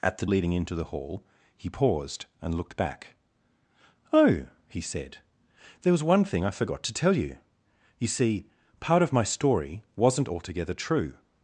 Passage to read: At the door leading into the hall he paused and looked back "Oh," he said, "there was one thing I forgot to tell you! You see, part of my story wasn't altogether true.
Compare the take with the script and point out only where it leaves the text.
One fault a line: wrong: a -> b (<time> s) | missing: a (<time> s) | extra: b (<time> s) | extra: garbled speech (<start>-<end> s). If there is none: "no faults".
missing: door (0.2 s)